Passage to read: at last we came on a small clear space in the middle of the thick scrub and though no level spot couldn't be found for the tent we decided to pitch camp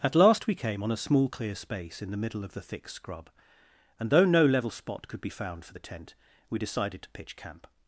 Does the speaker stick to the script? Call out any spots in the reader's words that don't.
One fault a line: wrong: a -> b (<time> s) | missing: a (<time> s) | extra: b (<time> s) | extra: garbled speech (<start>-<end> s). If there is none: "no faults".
wrong: couldn't -> could (5.1 s)